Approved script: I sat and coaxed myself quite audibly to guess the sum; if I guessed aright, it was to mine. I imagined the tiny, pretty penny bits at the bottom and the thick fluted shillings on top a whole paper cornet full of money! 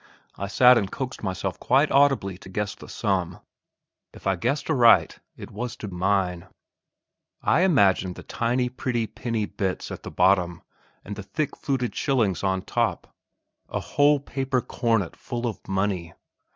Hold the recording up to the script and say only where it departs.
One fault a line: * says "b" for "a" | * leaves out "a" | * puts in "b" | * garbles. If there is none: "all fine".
all fine